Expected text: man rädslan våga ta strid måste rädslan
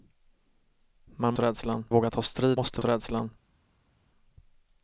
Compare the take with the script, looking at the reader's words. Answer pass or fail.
pass